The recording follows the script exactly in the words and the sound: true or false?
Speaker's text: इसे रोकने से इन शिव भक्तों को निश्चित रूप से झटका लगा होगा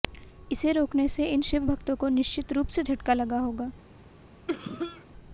false